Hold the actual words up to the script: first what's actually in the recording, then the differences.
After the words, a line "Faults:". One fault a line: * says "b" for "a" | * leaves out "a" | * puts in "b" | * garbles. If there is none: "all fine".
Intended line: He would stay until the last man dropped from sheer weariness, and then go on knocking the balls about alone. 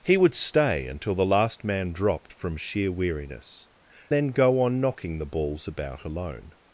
He would stay until the last man dropped from sheer weariness, then go on knocking the balls about alone.
Faults:
* leaves out "and"